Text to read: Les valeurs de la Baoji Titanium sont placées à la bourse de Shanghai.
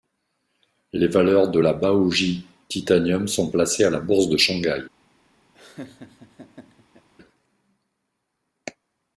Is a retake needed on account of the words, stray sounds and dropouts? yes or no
yes